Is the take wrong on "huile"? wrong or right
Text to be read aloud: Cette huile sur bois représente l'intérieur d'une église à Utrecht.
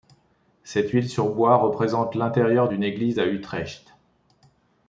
right